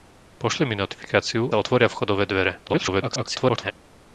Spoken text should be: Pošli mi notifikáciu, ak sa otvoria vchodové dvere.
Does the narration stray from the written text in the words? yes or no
yes